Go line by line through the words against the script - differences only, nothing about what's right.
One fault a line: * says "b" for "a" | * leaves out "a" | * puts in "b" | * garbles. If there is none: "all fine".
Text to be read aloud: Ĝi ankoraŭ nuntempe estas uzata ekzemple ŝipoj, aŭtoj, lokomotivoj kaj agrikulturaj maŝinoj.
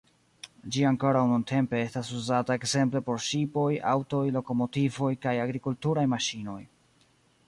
* puts in "por"